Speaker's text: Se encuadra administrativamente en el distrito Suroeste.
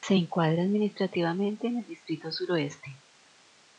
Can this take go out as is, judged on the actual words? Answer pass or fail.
pass